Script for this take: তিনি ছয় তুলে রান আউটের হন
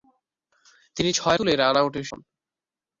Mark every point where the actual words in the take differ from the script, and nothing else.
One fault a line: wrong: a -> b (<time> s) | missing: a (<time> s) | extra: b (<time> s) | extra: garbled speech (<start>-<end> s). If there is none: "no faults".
no faults